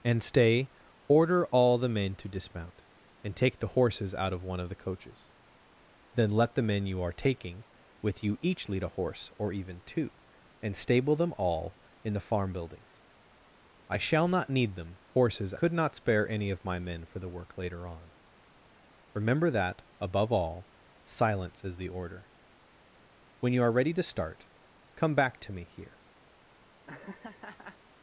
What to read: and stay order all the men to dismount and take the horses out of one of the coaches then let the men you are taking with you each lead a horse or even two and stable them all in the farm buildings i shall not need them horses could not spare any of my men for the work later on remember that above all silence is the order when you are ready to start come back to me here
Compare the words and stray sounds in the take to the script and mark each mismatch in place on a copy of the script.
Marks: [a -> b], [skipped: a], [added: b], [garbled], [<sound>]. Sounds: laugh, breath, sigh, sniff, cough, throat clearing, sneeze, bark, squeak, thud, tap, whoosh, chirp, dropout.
and stay order all the men to dismount and take the horses out of one of the coaches then let the men you are taking with you each lead a horse or even two and stable them all in the farm buildings i shall not need them horses could not spare any of my men for the work later on remember that above all silence is the order when you are ready to start come back to me here [laugh]